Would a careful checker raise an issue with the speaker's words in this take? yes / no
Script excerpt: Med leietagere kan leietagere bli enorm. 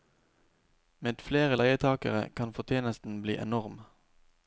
yes